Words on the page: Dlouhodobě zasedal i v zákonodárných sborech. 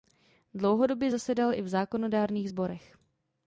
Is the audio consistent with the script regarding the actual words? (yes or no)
yes